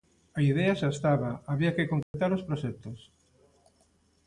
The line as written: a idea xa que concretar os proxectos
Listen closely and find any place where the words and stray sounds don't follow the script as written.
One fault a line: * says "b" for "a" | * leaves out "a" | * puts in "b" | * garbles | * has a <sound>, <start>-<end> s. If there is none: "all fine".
* puts in "estaba había"
* has a dropout, 2.0-2.1 s